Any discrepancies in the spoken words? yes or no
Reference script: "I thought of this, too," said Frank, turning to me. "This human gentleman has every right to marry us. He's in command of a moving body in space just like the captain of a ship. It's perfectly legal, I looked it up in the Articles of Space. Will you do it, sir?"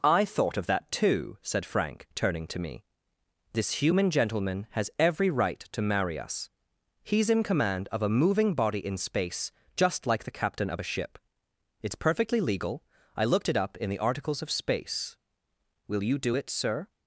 yes